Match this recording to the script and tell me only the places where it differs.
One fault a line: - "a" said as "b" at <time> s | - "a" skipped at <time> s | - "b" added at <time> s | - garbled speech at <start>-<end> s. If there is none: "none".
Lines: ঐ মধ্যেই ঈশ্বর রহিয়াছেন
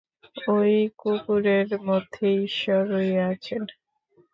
- "কুকুরের" added at 1.0 s